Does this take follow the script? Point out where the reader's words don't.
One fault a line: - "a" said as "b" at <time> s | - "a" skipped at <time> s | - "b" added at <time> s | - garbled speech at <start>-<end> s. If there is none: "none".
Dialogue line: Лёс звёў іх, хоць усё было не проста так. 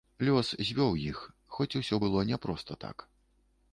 none